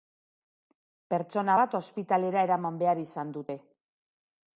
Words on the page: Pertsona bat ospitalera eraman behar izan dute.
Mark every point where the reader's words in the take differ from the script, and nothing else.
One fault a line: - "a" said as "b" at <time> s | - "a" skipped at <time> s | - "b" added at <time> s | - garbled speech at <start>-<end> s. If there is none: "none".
none